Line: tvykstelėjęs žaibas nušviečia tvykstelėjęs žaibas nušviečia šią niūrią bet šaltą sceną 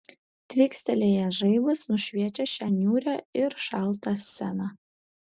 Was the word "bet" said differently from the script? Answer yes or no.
yes